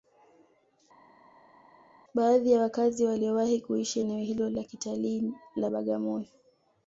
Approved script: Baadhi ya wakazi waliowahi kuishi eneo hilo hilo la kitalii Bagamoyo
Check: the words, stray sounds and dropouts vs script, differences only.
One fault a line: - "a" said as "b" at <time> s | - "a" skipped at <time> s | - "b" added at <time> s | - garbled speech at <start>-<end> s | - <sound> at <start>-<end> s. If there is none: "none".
- "hilo" skipped at 4.5 s
- "la" added at 5.6 s